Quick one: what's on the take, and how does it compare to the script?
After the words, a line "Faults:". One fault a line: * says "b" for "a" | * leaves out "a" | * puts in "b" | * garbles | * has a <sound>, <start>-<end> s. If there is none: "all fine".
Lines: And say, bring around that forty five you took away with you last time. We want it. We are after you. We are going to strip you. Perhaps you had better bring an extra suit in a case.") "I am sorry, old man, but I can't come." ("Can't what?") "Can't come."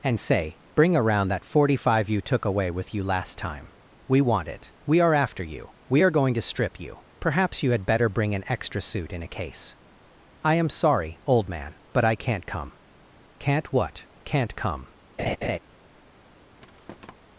And say, bring around that forty five you took away with you last time. We want it. We are after you. We are going to strip you. Perhaps you had better bring an extra suit in a case.") "I am sorry, old man, but I can't come." ("Can't what?") "Can't come."
Faults:
* has a laugh, 15.2-15.6 s
* has a thud, 16.6-17.1 s